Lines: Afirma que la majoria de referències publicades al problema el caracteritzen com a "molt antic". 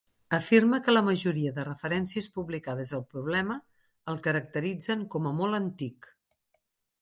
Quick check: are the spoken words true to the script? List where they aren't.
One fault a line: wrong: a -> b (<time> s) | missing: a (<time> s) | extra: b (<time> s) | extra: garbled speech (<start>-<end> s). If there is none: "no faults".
no faults